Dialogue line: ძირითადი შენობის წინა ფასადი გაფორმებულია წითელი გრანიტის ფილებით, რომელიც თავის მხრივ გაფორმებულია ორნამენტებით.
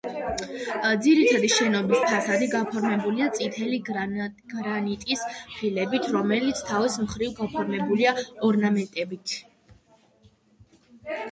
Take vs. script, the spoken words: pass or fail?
fail